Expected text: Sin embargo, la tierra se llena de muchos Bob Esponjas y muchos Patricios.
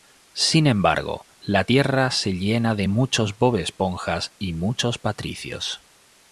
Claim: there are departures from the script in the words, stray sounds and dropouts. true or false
false